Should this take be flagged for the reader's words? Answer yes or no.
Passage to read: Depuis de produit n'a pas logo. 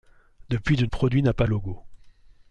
no